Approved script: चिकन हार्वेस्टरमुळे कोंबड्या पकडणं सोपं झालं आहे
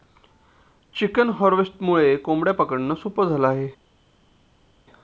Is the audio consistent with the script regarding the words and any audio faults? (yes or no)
yes